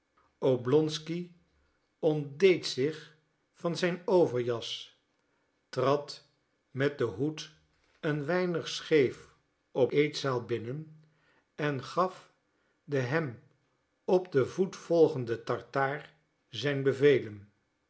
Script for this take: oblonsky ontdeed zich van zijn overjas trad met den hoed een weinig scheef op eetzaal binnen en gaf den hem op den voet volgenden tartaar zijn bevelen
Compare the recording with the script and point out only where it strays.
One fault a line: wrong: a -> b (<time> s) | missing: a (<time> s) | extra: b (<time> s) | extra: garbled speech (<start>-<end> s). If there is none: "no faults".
no faults